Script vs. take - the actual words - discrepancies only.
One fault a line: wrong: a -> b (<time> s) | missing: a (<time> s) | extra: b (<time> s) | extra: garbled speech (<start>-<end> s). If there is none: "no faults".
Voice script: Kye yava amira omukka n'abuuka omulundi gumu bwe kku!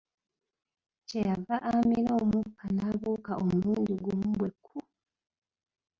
no faults